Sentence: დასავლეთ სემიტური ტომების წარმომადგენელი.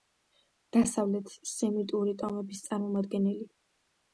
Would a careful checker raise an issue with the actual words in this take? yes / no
no